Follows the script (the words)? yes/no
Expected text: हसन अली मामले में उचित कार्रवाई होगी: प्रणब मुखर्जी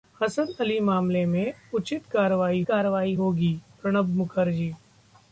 no